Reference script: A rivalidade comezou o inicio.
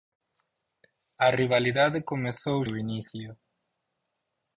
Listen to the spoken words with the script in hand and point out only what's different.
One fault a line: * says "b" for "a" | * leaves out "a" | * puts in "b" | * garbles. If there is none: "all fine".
all fine